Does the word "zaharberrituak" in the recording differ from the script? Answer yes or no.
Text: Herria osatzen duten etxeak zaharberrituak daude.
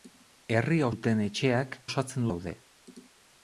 yes